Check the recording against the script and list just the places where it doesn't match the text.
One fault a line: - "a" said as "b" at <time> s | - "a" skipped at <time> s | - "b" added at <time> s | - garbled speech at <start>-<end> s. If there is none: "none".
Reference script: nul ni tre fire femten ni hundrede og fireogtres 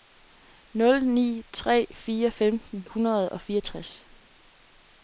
- "ni" skipped at 2.9 s